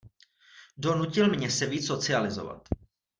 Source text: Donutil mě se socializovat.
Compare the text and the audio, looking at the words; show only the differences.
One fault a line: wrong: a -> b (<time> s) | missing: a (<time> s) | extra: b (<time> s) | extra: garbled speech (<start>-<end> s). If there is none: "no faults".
extra: víc (1.7 s)